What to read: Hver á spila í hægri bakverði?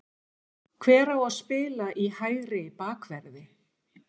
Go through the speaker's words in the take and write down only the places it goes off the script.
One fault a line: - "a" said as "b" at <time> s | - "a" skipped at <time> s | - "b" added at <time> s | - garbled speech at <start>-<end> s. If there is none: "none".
- "að" added at 1.2 s